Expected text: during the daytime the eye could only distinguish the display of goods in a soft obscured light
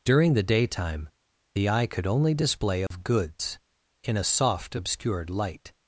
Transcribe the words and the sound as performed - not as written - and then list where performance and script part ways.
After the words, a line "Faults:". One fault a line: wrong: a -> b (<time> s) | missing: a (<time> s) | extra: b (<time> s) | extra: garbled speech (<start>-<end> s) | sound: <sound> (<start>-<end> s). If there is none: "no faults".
during the daytime the eye could only display of goods in a soft obscured light
Faults:
missing: distinguish the (2.3 s)
sound: dropout (2.9-2.9 s)